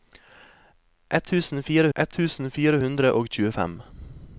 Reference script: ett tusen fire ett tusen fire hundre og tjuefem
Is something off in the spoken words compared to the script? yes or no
no